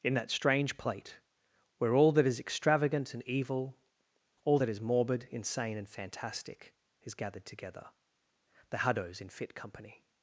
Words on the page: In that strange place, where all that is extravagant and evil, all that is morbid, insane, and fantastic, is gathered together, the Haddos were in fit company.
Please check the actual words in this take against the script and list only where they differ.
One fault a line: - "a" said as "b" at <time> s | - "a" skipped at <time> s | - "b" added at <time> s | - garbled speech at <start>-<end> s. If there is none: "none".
- "place" said as "plate" at 0.8 s
- "were" skipped at 9.2 s